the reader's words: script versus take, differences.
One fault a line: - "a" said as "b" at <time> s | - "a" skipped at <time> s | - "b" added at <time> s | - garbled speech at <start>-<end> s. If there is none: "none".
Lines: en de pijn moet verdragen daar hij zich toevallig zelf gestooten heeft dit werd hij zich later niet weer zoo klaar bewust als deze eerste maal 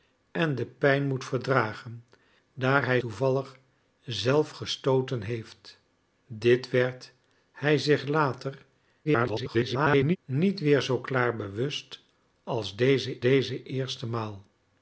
- "zich" skipped at 3.0 s
- garbled speech at 9.0-10.2 s
- "deze" added at 13.2 s